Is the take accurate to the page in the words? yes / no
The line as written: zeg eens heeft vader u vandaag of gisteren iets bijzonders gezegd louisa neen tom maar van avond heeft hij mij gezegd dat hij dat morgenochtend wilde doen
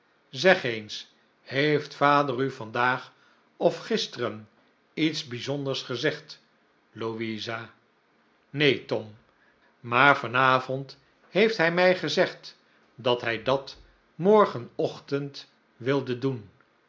yes